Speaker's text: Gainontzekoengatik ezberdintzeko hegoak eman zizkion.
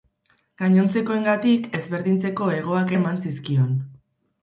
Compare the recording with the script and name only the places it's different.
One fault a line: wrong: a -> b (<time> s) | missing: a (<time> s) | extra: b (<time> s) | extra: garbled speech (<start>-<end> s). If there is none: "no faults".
no faults